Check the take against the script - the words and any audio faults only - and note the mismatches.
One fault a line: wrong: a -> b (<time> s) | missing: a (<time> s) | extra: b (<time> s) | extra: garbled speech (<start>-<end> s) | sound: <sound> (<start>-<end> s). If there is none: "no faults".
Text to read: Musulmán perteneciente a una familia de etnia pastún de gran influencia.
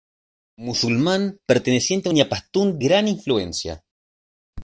missing: una familia de (2.1 s)
missing: de (2.8 s)